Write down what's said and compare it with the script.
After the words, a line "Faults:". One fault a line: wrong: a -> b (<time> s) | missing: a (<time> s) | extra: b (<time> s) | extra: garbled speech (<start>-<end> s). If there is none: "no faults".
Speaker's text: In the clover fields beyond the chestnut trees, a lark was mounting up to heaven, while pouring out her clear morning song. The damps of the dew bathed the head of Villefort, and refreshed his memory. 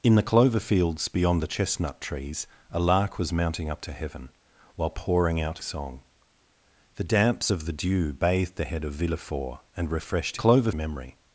In the clover fields beyond the chestnut trees, a lark was mounting up to heaven, while pouring out song. The damps of the dew bathed the head of Villefort, and refreshed clover memory.
Faults:
missing: her clear morning (5.6 s)
wrong: his -> clover (10.3 s)